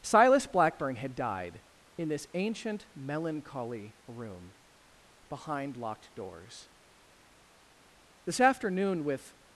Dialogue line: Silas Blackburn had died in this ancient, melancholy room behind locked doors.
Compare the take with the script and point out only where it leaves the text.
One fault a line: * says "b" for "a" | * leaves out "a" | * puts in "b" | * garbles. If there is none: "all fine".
* puts in "This afternoon with"